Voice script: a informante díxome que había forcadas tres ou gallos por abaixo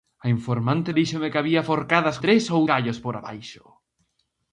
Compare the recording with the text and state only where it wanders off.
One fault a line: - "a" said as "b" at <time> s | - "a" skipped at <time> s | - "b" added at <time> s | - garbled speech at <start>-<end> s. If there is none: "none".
none